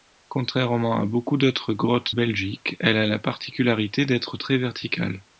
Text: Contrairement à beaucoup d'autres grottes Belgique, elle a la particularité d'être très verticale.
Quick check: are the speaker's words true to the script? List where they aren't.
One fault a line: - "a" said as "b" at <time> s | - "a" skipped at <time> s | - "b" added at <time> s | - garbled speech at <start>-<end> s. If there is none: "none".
none